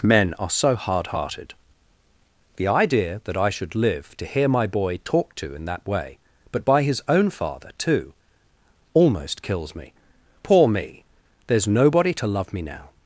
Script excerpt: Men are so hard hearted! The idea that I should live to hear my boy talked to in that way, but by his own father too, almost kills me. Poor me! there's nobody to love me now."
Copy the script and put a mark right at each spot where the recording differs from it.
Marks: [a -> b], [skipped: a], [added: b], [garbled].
Men are so hard hearted! The idea that I should live to hear my boy talked to in that way, but by his own father too, almost kills me. Poor me! there's nobody to love me now."